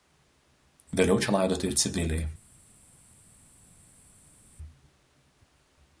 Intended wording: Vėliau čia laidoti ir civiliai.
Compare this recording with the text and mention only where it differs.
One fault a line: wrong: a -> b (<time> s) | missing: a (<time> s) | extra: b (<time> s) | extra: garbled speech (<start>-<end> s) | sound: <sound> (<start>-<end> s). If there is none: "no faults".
no faults